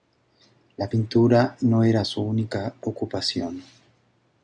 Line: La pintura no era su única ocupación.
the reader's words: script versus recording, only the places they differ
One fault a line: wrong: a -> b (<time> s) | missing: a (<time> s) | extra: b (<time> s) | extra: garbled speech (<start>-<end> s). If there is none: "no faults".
no faults